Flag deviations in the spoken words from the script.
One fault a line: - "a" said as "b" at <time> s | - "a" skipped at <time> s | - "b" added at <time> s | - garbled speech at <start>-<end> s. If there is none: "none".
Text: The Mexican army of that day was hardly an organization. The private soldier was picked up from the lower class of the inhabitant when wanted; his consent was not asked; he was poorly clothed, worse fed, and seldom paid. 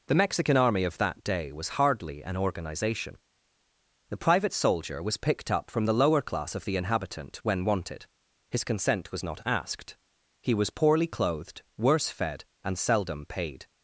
none